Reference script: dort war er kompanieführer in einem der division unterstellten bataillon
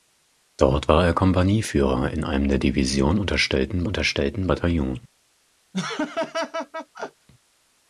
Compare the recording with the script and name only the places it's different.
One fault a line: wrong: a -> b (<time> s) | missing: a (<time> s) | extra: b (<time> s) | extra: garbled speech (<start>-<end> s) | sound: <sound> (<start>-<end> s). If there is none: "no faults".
extra: unterstellten (3.9 s)
sound: laugh (5.7-7.3 s)